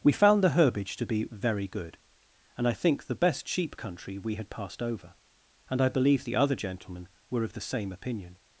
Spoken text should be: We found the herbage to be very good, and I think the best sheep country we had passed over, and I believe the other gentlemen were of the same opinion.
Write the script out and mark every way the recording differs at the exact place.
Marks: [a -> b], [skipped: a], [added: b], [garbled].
We found the herbage to be very good, and I think the best sheep country we had passed over, and I believe the other gentlemen were of the same opinion.